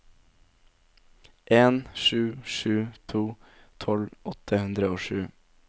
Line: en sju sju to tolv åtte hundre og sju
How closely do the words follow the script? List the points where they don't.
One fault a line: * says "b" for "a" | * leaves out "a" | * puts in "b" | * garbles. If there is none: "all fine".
all fine